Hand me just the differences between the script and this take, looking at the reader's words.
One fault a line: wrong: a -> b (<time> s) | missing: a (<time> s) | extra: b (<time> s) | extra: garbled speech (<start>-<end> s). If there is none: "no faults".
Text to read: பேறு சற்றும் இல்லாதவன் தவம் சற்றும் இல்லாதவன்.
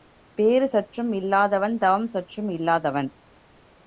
no faults